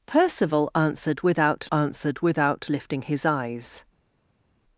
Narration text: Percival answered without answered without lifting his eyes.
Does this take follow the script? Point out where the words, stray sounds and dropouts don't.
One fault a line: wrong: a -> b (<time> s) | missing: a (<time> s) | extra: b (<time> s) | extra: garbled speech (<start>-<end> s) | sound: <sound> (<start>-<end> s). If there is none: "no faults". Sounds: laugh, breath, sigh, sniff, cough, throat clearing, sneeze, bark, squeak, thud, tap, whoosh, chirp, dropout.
no faults